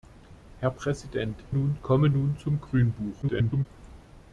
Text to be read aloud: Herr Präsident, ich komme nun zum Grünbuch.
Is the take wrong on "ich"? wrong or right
wrong